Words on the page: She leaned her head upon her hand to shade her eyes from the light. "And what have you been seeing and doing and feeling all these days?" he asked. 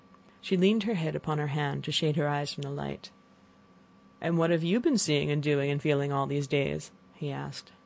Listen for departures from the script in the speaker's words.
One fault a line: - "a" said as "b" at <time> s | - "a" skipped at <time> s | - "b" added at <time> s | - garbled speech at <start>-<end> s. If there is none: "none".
none